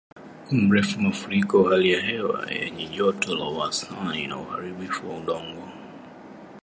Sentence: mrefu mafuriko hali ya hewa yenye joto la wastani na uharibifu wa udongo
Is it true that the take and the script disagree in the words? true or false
false